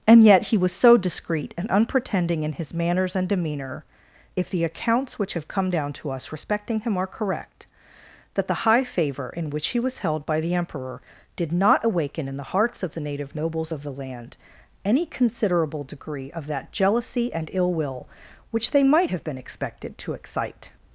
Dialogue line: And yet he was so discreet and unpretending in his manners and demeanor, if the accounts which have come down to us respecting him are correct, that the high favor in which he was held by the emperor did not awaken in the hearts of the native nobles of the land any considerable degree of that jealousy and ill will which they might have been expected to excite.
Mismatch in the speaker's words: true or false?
false